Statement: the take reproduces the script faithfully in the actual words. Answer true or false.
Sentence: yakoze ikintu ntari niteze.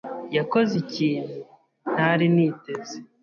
true